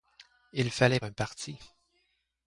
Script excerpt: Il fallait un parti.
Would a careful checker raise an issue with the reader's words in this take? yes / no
no